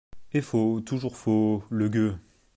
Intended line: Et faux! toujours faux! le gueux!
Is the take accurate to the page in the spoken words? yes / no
yes